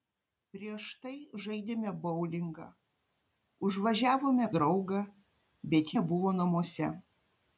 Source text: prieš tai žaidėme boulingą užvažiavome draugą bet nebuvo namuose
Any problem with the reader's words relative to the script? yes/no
no